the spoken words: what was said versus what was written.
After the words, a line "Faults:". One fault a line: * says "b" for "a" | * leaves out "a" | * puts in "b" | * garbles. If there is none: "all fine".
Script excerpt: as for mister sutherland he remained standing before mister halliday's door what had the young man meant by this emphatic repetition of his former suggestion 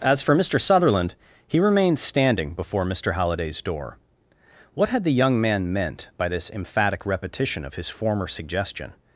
as for mister sutherland he remained standing before mister halliday's door what had the young man meant by this emphatic repetition of his former suggestion
Faults:
all fine